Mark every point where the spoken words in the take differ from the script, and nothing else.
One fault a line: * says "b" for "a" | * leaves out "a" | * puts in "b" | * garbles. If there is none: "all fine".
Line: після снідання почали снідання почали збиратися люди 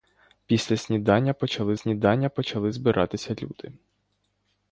all fine